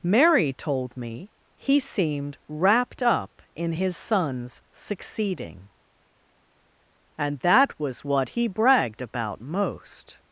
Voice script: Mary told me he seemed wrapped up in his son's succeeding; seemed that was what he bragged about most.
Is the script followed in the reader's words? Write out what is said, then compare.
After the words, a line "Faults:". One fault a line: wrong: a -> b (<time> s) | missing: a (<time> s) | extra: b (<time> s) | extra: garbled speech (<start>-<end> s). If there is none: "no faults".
Mary told me he seemed wrapped up in his son's succeeding; and that was what he bragged about most.
Faults:
wrong: seemed -> and (7.2 s)